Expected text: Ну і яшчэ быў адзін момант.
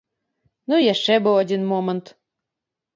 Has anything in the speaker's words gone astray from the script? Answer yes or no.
no